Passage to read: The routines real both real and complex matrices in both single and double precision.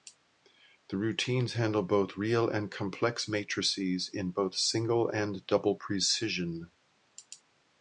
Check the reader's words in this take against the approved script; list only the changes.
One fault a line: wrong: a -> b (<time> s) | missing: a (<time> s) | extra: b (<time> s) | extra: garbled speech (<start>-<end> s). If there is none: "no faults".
wrong: real -> handle (1.5 s)